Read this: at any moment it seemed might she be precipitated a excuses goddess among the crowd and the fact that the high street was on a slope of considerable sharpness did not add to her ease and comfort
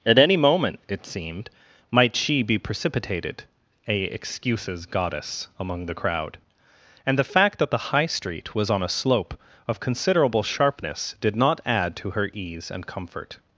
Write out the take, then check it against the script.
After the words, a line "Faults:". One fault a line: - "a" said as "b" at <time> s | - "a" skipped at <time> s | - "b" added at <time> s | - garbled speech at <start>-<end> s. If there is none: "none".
at any moment it seemed might she be precipitated a excuses goddess among the crowd and the fact that the high street was on a slope of considerable sharpness did not add to her ease and comfort
Faults:
none